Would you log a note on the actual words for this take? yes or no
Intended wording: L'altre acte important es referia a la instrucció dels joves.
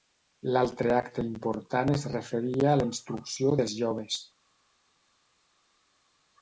no